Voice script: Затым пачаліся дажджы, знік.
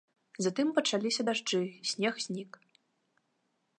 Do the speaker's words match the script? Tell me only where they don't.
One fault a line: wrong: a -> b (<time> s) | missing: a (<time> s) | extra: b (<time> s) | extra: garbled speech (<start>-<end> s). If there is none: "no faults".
extra: снег (1.9 s)